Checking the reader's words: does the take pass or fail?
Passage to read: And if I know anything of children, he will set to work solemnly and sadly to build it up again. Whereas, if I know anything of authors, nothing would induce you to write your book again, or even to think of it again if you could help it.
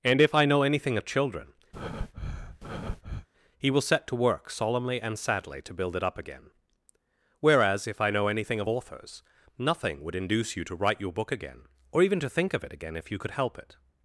pass